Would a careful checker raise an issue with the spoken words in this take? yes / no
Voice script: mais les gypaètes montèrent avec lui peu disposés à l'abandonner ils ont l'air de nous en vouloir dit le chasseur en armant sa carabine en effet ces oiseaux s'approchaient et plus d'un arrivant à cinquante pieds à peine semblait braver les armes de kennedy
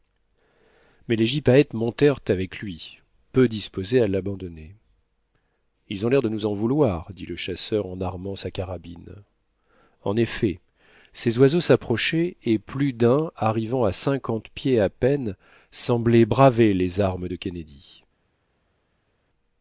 no